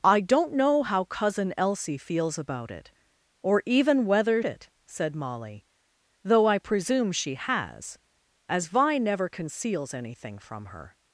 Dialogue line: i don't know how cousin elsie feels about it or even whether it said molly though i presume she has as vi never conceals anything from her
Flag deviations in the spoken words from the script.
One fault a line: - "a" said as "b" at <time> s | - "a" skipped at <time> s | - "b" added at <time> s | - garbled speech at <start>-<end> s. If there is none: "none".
none